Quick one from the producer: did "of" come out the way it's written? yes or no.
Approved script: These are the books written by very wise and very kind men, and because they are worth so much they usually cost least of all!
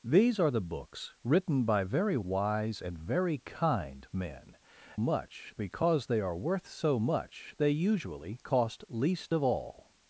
yes